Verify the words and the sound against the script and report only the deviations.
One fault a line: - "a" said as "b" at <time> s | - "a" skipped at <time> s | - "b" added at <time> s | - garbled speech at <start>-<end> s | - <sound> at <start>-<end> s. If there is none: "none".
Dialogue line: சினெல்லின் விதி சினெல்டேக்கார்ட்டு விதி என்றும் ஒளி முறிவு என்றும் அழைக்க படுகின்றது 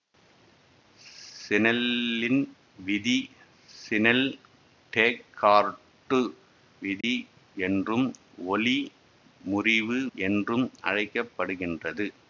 - dropout at 7.0-7.0 s